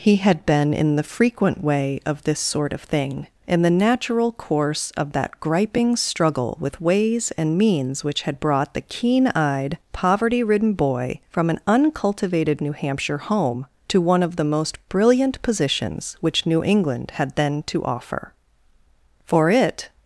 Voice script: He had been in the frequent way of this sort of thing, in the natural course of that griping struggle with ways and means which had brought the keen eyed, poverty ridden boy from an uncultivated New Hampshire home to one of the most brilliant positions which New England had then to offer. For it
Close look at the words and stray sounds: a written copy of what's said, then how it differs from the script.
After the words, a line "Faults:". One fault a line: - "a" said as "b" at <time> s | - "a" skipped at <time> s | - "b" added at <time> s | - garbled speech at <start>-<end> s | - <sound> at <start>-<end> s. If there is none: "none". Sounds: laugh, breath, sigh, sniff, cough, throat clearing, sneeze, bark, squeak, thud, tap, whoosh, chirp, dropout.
He had been in the frequent way of this sort of thing, in the natural course of that griping struggle with ways and means which had brought the keen eyed, poverty ridden boy from an uncultivated New Hampshire home to one of the most brilliant positions which New England had then to offer. For it
Faults:
none